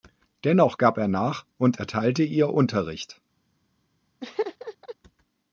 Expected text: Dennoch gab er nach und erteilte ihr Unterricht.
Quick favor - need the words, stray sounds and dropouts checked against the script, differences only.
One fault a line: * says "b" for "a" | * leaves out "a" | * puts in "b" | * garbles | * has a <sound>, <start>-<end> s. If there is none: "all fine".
* has a laugh, 4.2-5.0 s